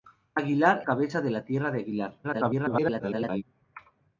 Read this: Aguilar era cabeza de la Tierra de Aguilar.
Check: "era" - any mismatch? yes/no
yes